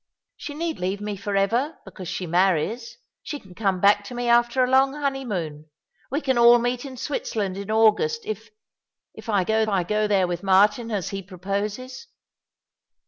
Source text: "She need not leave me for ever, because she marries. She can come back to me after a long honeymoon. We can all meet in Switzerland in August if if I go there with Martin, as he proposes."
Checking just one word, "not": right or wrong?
wrong